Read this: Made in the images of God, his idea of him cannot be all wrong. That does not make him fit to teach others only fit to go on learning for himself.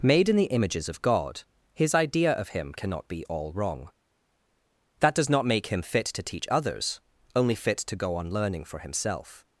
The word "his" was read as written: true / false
true